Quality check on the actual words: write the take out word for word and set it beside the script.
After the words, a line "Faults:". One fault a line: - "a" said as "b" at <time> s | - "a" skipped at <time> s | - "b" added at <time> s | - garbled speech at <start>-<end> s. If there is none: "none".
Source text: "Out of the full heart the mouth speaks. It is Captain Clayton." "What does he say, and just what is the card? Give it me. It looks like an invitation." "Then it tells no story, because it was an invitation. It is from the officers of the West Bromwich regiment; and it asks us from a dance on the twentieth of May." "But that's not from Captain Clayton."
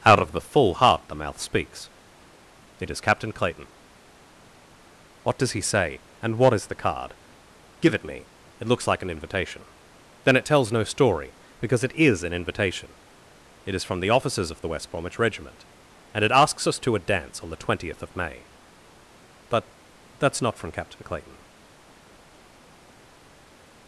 "Out of the full heart the mouth speaks. It is Captain Clayton." "What does he say, and what is the card? Give it me. It looks like an invitation." "Then it tells no story, because it is an invitation. It is from the officers of the West Bromwich regiment; and it asks us to a dance on the twentieth of May." "But that's not from Captain Clayton."
Faults:
- "just" skipped at 6.4 s
- "was" said as "is" at 11.9 s
- "from" said as "to" at 16.8 s